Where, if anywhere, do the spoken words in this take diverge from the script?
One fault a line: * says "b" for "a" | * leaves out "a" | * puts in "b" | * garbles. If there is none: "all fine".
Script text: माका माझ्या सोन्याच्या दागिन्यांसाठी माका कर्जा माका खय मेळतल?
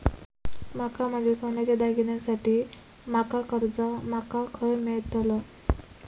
all fine